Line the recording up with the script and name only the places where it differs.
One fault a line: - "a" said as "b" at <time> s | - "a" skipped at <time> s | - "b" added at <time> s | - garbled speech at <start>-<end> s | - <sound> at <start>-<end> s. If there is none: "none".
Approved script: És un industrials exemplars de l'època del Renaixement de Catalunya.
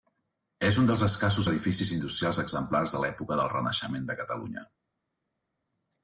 - "dels escassos edificis" added at 0.9 s